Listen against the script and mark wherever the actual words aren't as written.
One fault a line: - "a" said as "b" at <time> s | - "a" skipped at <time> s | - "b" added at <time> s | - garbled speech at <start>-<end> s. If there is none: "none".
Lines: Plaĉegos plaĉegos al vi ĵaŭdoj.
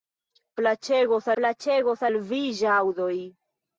none